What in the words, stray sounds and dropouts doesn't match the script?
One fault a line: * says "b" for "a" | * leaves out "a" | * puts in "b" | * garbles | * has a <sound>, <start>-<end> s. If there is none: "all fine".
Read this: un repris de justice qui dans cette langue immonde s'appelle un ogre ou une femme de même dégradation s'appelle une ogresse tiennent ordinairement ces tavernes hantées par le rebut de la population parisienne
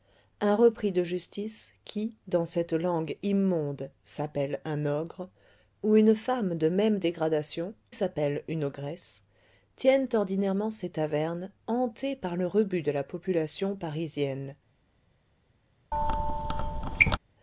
* has a squeak, 15.9-17.2 s